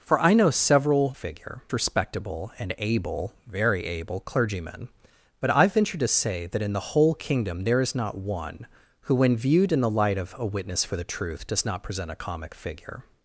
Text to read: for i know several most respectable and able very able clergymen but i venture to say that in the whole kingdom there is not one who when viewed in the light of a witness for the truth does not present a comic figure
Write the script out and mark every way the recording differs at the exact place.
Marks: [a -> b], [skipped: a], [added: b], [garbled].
for i know several [most -> figure] respectable and able very able clergymen but i venture to say that in the whole kingdom there is not one who when viewed in the light of a witness for the truth does not present a comic figure